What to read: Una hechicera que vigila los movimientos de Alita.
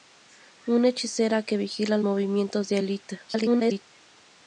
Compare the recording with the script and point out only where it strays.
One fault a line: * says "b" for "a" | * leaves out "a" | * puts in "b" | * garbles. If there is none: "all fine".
* leaves out "los"
* garbles